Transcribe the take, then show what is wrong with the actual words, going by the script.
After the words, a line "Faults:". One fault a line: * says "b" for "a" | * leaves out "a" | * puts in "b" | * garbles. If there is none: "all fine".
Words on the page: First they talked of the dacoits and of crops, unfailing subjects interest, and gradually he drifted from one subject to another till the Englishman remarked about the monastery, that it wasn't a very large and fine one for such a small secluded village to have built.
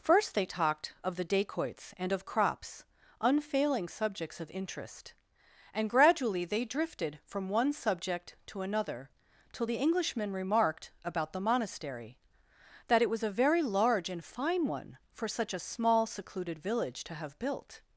First they talked of the dacoits and of crops, unfailing subjects of interest, and gradually they drifted from one subject to another till the Englishman remarked about the monastery, that it was a very large and fine one for such a small secluded village to have built.
Faults:
* puts in "of"
* says "they" for "he"
* says "was" for "wasn't"